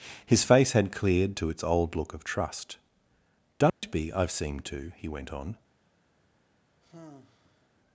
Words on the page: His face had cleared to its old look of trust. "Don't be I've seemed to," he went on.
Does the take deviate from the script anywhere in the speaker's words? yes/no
no